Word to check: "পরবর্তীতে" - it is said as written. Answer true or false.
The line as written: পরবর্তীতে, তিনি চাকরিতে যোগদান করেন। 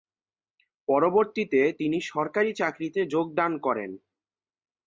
true